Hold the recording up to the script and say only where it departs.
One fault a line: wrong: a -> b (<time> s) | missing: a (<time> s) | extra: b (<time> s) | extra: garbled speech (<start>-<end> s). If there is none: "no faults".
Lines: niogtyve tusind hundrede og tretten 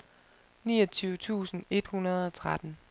extra: et (1.7 s)